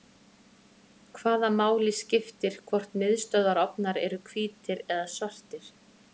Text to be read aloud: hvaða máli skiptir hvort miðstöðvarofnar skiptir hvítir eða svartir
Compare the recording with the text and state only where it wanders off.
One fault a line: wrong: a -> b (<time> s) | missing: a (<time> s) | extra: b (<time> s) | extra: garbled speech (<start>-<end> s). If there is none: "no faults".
wrong: skiptir -> eru (4.1 s)